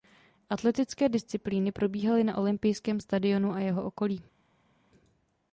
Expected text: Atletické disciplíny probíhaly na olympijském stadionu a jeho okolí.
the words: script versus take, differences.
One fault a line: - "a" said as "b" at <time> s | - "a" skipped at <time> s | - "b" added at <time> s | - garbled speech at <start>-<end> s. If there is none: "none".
none